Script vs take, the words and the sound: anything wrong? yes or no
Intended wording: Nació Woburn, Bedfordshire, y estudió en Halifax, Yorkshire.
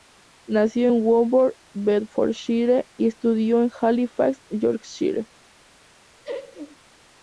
yes